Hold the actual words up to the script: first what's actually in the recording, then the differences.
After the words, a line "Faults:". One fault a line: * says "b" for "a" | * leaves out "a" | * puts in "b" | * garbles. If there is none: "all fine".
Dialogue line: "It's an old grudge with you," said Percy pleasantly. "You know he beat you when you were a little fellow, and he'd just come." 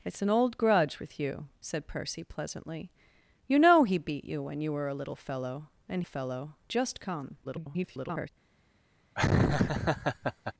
"It's an old grudge with you," said Percy pleasantly. "You know he beat you when you were a little fellow, and fellow just come." [garbled]
Faults:
* says "fellow" for "he'd"
* garbles